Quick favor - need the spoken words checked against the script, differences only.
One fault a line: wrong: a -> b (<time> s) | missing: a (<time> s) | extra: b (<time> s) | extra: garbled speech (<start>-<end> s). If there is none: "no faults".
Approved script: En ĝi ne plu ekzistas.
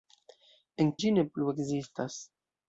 no faults